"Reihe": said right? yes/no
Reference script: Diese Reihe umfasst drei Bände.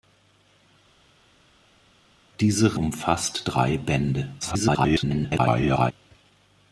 no